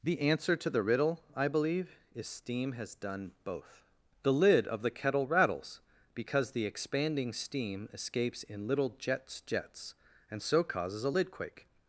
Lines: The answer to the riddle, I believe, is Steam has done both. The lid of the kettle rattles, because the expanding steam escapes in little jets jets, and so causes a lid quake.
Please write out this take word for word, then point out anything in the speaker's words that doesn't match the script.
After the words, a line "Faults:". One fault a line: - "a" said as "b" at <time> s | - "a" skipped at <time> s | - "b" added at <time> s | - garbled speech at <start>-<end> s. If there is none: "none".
The answer to the riddle, I believe, is Steam has done both. The lid of the kettle rattles, because the expanding steam escapes in little jets jets, and so causes a lid quake.
Faults:
none